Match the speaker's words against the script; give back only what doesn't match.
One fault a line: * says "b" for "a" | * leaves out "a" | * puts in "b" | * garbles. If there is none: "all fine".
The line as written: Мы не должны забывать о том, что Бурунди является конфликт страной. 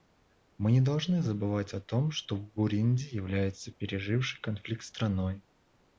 * puts in "пережившей"